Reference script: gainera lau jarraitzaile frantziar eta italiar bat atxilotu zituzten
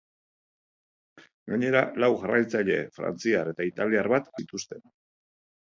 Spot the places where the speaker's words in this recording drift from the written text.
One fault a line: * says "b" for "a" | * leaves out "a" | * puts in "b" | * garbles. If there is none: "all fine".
* leaves out "atxilotu"